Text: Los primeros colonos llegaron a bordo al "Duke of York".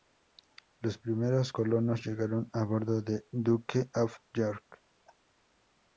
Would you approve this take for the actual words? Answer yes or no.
no